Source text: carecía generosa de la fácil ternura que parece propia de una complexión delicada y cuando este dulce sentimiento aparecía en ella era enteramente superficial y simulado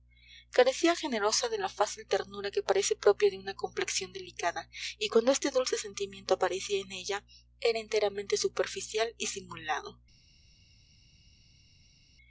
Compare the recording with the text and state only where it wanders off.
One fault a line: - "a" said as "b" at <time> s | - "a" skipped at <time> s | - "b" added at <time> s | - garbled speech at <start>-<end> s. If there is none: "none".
none